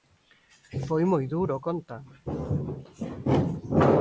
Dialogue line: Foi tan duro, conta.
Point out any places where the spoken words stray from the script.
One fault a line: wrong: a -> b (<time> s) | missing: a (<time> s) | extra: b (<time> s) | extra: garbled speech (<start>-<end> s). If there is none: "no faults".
wrong: tan -> moi (1.1 s)